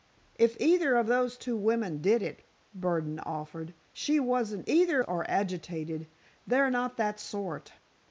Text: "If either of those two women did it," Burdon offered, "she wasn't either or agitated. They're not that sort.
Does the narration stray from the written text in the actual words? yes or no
no